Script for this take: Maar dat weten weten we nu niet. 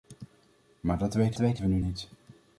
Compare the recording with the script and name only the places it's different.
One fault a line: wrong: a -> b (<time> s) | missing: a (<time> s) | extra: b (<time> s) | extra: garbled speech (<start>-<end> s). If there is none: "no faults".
no faults